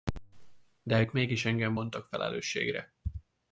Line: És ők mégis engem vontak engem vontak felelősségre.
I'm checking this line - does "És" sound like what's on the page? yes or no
no